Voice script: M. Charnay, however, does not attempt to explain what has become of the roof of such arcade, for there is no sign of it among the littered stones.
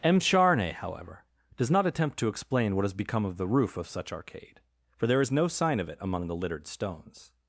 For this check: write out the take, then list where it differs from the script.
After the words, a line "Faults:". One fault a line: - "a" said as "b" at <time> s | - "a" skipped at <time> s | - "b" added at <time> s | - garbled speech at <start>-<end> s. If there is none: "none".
M. Charnay, however, does not attempt to explain what has become of the roof of such arcade, for there is no sign of it among the littered stones.
Faults:
none